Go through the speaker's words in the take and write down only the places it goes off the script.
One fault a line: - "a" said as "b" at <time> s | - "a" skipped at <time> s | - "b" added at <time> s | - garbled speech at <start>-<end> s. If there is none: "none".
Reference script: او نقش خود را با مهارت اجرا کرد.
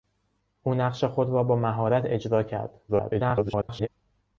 - garbled speech at 2.9-3.9 s